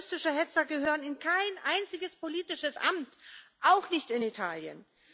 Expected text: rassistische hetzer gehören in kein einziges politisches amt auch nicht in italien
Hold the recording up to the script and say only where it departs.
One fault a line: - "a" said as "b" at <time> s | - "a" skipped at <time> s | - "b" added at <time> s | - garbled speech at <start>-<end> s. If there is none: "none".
none